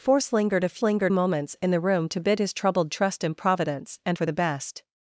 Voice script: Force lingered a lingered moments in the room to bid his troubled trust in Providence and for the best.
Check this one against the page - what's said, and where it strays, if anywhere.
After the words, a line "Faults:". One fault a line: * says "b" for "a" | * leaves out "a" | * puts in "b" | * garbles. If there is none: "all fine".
Force lingered a lingered moments in the room to bid his troubled trust in Providence and for the best.
Faults:
all fine